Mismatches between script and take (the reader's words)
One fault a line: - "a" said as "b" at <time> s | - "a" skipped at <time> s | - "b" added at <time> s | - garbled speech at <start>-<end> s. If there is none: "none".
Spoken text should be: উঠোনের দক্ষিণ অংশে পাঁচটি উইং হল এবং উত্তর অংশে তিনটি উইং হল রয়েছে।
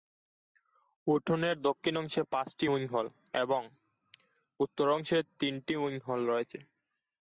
none